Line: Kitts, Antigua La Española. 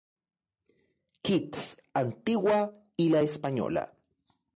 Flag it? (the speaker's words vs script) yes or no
yes